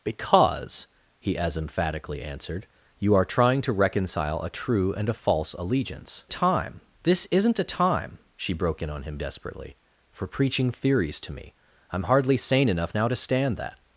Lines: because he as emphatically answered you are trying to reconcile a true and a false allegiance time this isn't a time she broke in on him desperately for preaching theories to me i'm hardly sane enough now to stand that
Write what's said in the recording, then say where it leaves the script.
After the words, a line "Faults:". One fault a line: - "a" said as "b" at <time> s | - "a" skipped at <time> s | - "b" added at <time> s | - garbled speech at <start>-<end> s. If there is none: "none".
because he as emphatically answered you are trying to reconcile a true and a false allegiance time this isn't a time she broke in on him desperately for preaching theories to me i'm hardly sane enough now to stand that
Faults:
none